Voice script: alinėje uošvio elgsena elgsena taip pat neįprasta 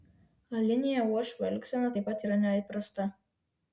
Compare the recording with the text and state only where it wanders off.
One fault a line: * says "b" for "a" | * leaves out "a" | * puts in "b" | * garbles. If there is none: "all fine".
* leaves out "elgsena"
* puts in "yra"